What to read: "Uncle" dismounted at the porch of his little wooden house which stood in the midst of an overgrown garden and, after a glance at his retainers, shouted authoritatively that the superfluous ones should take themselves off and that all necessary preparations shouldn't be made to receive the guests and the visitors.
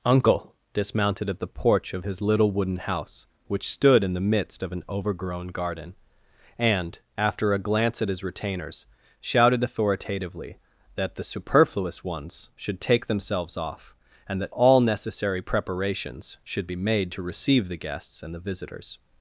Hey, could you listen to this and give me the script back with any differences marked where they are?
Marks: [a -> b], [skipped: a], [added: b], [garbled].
"Uncle" dismounted at the porch of his little wooden house which stood in the midst of an overgrown garden and, after a glance at his retainers, shouted authoritatively that the superfluous ones should take themselves off and that all necessary preparations [shouldn't -> should] be made to receive the guests and the visitors.